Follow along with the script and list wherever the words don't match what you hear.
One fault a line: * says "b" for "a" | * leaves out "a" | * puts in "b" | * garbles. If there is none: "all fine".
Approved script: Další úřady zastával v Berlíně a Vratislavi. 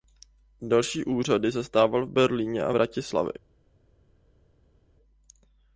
all fine